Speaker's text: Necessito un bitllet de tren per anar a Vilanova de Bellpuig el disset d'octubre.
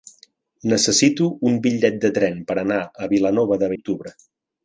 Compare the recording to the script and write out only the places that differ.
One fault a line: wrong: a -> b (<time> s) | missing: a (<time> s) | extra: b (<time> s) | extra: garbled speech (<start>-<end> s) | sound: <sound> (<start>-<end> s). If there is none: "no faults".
missing: Bellpuig el disset (3.7 s)